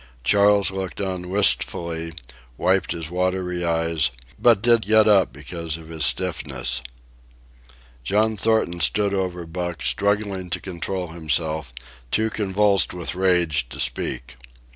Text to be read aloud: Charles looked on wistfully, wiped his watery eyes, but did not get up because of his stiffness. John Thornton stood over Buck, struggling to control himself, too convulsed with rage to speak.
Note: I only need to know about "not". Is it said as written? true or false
false